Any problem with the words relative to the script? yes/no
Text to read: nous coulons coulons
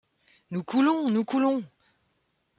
yes